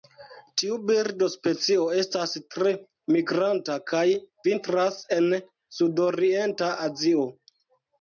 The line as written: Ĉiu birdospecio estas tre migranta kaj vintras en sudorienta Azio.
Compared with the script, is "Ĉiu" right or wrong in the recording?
wrong